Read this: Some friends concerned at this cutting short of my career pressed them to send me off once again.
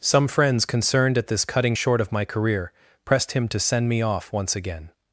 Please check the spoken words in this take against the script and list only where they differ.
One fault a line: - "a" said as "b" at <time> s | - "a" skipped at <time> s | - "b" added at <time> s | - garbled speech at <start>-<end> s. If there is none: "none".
- "them" said as "him" at 3.3 s